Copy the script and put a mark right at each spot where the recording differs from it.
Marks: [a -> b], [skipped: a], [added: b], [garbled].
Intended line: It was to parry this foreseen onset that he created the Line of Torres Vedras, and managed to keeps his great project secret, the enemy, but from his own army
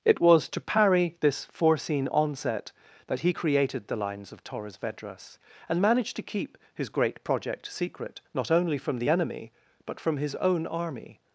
It was to parry this foreseen onset that he created the [Line -> Lines] of Torres Vedras, and managed to [keeps -> keep] his great project secret, [added: not only from] the enemy, but from his own army